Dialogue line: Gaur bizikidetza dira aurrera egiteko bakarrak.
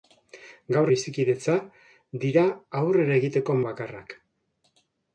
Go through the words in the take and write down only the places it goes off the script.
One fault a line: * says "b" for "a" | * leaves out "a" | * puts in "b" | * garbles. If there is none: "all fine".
all fine